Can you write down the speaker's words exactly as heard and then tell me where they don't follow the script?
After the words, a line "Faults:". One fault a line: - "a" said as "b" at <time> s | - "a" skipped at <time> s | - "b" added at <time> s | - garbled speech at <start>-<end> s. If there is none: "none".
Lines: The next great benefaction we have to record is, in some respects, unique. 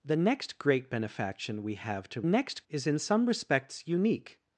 The next great benefaction we have to next is, in some respects, unique.
Faults:
- "record" said as "next" at 2.2 s